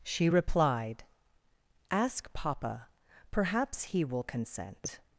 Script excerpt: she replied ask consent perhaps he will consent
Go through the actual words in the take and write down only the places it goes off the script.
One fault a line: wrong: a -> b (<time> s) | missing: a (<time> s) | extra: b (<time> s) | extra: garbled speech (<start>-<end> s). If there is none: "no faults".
wrong: consent -> papa (2.3 s)